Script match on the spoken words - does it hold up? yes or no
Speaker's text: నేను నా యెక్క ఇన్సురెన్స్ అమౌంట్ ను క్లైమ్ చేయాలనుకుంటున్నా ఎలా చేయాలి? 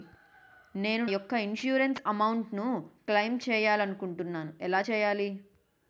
no